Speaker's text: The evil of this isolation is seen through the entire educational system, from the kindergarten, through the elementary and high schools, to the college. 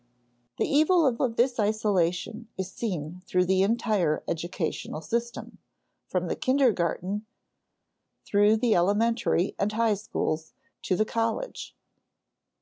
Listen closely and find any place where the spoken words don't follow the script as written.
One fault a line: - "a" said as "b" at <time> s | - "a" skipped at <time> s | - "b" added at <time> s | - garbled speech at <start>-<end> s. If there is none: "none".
- "of" added at 1.2 s